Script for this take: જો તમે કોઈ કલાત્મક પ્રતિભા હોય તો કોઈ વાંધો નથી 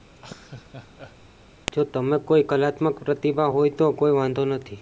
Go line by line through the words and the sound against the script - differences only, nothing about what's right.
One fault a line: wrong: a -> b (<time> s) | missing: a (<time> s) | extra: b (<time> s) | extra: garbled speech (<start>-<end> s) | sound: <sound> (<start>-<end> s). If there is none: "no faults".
sound: laugh (0.2-1.2 s)